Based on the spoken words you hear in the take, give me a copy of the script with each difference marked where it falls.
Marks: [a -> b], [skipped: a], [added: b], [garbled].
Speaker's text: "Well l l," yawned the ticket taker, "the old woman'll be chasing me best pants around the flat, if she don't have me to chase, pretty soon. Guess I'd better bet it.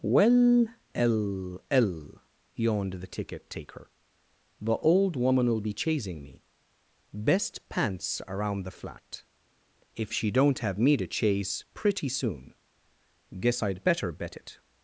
"Well l l," yawned the ticket taker, "the old woman'll be chasing me best pants around the flat, if she don't have me to chase, pretty soon. Guess I'd better bet it.